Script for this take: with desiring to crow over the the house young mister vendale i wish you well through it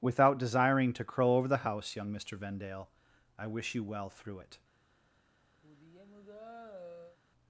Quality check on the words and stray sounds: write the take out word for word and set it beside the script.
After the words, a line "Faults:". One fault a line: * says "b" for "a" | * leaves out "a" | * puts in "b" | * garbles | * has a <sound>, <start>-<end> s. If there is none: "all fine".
without desiring to crow over the house young mister vendale i wish you well through it
Faults:
* says "without" for "with"
* leaves out "the"
* has a sigh, 5.6-7.2 s